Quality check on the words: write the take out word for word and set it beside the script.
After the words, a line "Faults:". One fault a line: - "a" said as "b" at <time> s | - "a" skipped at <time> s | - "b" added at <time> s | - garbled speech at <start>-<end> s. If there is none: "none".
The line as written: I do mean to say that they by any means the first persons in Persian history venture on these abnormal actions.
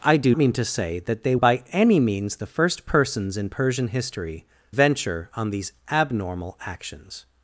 I do mean to say that they by any means the first persons in Persian history venture on these abnormal actions.
Faults:
none